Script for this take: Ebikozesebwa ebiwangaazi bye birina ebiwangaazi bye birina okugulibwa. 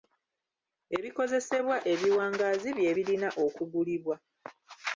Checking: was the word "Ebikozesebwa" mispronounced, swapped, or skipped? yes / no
no